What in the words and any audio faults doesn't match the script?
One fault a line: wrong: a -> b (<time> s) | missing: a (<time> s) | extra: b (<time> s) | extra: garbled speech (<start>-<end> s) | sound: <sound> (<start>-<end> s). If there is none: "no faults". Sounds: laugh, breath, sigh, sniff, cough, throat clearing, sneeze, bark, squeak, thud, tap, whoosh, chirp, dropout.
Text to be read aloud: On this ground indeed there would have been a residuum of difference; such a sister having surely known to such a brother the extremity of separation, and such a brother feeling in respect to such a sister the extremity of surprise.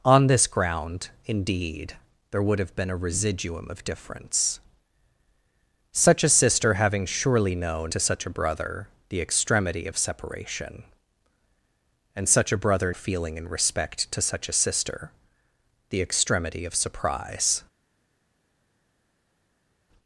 no faults